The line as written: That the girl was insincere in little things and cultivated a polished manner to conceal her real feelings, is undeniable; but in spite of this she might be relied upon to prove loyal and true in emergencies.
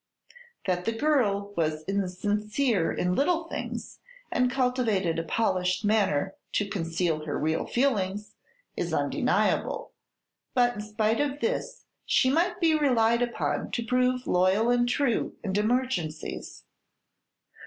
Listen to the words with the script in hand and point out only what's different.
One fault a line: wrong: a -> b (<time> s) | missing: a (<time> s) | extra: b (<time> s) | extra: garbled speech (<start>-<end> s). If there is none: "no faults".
no faults